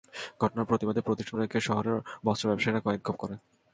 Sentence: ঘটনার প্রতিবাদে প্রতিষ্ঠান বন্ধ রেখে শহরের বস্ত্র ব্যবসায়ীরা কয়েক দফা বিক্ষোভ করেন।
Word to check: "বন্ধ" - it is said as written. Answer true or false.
false